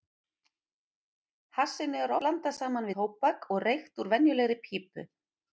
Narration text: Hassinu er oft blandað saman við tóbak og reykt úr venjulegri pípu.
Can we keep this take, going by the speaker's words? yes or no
no